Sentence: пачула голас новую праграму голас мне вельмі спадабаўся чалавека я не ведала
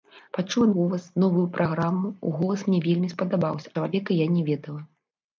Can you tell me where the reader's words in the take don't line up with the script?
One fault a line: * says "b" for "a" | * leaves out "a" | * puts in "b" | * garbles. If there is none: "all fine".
all fine